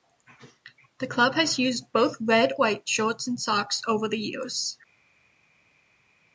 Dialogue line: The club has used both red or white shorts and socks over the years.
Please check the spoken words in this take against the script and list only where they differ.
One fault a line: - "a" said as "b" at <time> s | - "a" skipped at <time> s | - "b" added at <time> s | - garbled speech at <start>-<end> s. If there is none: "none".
- "or" skipped at 2.5 s